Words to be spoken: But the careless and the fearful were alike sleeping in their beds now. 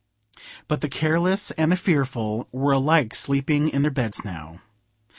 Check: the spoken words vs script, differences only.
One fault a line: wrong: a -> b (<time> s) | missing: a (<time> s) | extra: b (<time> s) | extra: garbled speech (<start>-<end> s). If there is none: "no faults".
no faults